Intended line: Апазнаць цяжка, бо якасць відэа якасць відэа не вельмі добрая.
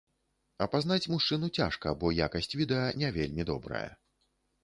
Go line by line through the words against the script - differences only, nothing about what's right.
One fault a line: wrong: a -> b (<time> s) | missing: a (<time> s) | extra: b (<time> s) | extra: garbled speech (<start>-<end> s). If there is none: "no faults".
extra: мужчыну (1.1 s)
missing: якасць відэа (2.9 s)